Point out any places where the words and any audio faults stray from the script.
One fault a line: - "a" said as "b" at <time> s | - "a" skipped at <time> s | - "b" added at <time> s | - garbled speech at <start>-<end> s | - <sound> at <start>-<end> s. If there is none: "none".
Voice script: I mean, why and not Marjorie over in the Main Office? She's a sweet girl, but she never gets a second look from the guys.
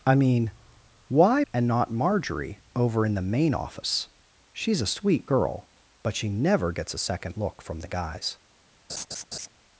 - laugh at 8.9-9.5 s